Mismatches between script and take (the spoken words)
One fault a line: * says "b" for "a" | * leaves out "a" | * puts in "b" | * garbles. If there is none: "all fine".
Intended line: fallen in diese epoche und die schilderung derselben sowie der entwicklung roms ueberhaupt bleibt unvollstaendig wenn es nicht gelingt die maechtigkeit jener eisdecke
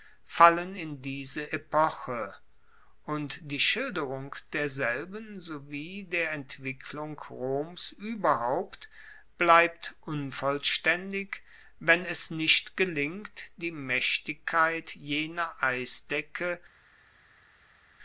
all fine